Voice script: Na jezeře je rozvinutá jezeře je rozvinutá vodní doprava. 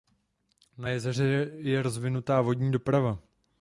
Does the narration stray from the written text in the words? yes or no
yes